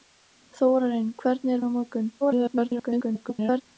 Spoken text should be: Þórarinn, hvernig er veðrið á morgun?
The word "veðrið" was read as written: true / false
false